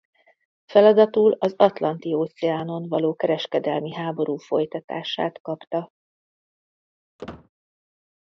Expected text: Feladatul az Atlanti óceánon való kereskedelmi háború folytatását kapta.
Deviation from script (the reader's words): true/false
false